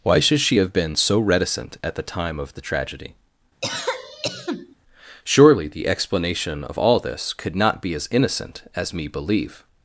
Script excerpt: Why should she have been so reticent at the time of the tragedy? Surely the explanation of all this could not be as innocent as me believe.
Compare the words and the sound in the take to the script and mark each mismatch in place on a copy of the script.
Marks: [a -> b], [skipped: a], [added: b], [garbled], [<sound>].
Why should she have been so reticent at the time of the tragedy? [cough] Surely the explanation of all this could not be as innocent as me believe.